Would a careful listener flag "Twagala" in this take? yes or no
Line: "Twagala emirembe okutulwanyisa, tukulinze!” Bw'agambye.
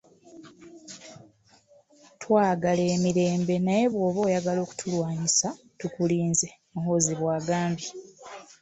no